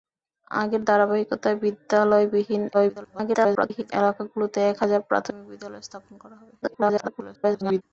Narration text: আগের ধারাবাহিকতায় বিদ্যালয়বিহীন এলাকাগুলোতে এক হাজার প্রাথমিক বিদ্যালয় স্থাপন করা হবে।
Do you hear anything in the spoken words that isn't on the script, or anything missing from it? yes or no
yes